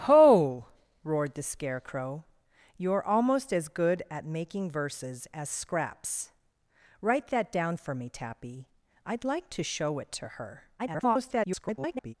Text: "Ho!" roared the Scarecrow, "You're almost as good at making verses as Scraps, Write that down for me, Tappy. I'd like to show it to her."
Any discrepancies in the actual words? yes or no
yes